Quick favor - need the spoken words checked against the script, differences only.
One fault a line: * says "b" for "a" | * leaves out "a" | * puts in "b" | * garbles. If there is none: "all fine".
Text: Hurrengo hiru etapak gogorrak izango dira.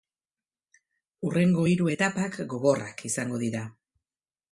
all fine